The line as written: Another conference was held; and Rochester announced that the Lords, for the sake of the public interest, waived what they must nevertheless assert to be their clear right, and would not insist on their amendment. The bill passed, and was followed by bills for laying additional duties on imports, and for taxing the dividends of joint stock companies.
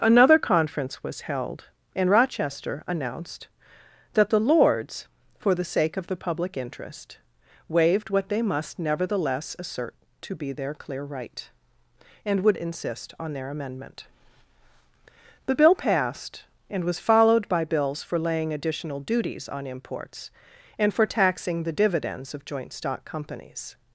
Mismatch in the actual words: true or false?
true